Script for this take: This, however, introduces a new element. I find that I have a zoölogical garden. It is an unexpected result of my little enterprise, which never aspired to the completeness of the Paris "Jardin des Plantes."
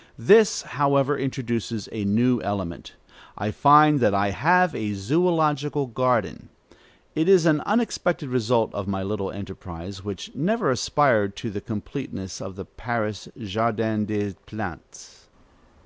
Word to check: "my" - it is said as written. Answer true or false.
true